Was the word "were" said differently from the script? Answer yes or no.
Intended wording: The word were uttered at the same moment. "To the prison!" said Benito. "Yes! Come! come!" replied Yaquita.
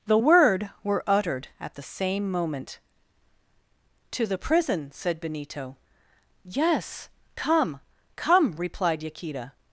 no